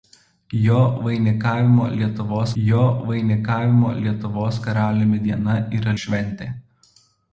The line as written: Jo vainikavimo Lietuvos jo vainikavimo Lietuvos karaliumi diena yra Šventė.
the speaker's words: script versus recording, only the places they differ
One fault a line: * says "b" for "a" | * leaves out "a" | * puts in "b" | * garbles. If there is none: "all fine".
all fine